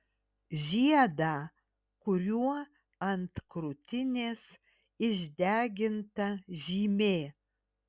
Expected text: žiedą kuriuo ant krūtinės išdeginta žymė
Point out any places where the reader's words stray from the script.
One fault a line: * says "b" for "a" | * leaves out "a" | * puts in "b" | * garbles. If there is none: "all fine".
all fine